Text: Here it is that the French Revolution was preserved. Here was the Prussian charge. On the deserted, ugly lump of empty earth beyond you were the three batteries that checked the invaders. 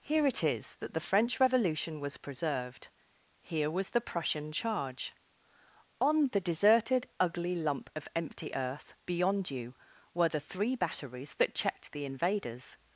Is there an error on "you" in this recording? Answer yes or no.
no